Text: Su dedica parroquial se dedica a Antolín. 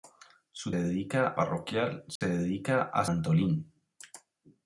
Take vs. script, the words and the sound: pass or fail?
fail